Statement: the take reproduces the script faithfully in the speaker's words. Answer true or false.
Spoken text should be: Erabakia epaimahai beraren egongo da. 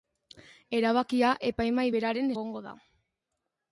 true